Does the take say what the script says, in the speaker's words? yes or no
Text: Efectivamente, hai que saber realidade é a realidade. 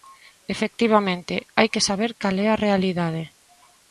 no